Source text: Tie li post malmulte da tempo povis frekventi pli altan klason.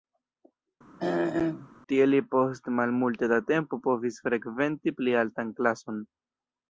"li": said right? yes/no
yes